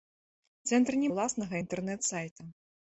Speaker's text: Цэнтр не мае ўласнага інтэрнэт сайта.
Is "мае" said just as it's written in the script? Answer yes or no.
no